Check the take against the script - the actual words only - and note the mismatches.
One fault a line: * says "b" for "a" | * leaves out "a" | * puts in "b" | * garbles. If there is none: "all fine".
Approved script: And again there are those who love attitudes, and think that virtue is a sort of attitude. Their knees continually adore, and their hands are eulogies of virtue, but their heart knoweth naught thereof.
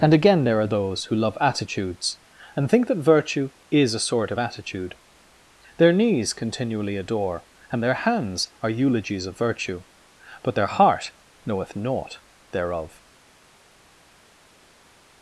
all fine